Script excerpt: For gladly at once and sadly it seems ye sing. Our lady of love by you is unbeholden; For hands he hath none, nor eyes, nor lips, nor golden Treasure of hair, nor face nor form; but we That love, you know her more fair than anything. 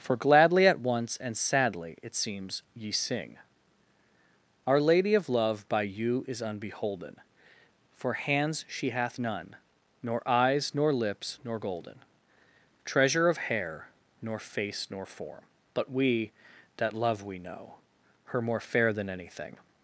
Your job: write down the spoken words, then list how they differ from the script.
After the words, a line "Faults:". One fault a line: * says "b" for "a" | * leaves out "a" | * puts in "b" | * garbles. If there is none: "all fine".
For gladly at once and sadly it seems ye sing. Our lady of love by you is unbeholden; For hands she hath none, nor eyes, nor lips, nor golden Treasure of hair, nor face nor form; but we That love, we know her more fair than anything.
Faults:
* says "she" for "he"
* says "we" for "you"